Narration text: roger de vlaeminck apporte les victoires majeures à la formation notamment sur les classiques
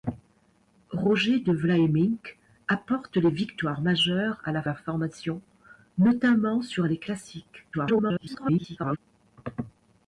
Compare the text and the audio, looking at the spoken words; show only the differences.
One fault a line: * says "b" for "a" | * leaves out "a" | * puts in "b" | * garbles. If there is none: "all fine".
* puts in "la"
* garbles